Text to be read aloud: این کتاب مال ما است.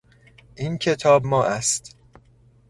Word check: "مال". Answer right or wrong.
wrong